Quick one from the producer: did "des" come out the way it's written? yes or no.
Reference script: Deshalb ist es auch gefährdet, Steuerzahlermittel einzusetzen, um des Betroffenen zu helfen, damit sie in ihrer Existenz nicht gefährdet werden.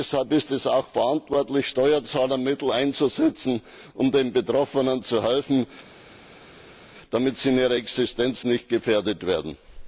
no